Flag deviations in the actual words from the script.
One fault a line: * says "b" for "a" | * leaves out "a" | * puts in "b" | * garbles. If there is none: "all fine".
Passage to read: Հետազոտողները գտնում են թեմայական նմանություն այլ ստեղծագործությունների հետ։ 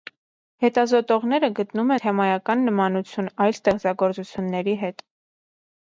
* leaves out "են"